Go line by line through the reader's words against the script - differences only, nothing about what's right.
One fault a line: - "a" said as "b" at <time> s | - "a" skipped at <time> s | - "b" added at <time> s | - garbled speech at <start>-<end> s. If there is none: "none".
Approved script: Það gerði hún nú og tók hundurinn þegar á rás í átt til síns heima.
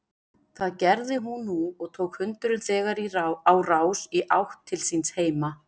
none